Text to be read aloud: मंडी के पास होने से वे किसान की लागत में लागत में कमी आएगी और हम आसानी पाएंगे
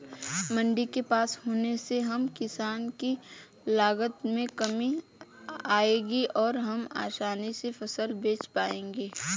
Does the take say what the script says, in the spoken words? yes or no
no